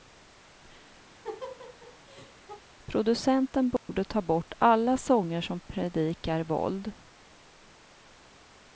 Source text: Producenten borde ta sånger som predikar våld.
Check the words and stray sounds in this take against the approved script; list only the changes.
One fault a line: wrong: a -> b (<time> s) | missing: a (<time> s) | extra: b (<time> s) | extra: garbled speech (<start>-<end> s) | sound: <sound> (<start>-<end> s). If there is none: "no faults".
sound: laugh (1.1-2.6 s)
sound: dropout (3.8-3.9 s)
extra: bort alla (4.2 s)